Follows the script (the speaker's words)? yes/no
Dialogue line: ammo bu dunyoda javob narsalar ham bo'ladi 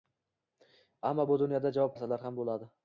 yes